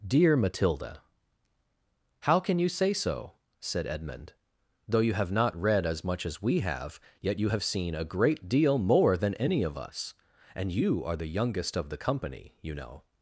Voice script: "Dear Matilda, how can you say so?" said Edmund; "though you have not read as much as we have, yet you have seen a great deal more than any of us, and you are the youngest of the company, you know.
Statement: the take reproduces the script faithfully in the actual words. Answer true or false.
true